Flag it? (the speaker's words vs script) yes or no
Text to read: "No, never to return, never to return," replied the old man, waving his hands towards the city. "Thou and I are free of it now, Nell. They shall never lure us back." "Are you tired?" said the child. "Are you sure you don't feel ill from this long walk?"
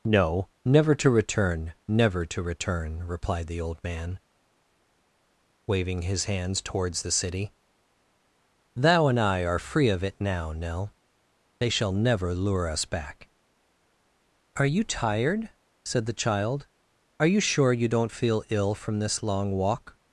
no